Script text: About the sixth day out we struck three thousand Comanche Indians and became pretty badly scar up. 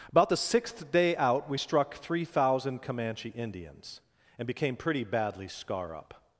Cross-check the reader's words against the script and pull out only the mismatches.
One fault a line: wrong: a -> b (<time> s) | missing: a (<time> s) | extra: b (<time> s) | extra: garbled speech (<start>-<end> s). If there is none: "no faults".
no faults